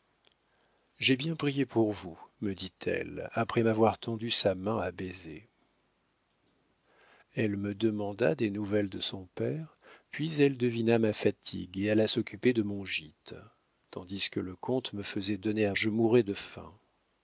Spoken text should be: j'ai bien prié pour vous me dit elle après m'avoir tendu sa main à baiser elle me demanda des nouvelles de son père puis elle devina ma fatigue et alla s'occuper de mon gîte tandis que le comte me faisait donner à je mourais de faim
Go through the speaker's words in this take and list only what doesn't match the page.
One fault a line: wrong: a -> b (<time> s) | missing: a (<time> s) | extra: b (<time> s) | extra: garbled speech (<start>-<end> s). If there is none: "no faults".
no faults